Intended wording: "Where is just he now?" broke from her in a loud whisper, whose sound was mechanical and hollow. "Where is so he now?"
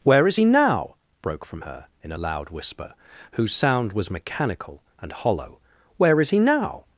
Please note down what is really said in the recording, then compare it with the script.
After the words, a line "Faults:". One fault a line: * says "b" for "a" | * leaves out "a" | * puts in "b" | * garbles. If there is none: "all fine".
"Where is he now?" broke from her in a loud whisper, whose sound was mechanical and hollow. "Where is he now?"
Faults:
* leaves out "just"
* leaves out "so"